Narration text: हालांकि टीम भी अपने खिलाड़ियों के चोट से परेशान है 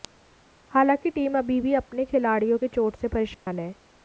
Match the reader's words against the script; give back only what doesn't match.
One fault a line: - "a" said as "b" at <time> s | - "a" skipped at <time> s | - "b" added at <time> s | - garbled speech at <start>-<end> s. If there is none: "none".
- "अभी" added at 1.4 s